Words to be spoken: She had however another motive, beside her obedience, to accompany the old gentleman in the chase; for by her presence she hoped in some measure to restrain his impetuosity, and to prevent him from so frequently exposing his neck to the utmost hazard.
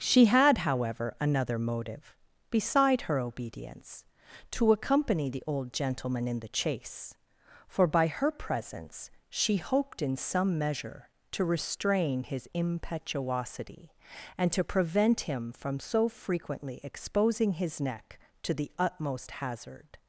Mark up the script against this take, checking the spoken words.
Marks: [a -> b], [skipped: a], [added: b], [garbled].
She had however another motive, beside her obedience, to accompany the old gentleman in the chase; for by her presence she hoped in some measure to restrain his impetuosity, and to prevent him from so frequently exposing his neck to the utmost hazard.